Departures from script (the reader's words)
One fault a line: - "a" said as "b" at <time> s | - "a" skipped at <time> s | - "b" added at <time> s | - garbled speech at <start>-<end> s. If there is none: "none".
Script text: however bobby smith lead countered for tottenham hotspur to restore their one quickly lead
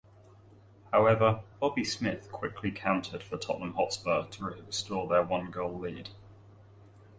- "lead" said as "quickly" at 2.3 s
- "quickly" said as "goal" at 5.5 s